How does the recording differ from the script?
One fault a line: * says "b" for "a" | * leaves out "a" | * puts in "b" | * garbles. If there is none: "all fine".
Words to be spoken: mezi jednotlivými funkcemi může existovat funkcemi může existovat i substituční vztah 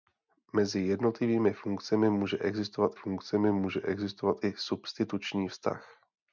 all fine